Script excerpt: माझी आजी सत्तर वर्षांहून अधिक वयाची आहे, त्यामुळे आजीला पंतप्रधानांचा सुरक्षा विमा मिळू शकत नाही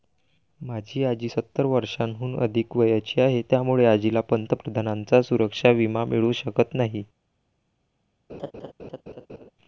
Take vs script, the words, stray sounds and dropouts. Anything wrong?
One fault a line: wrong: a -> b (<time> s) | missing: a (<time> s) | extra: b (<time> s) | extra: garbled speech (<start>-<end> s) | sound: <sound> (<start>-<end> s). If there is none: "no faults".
sound: laugh (8.3-9.5 s)